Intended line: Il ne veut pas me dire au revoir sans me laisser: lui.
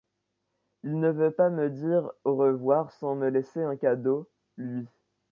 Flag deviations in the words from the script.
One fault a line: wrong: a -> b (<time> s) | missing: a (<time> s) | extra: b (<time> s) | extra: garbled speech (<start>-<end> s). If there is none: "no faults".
extra: un cadeau (3.6 s)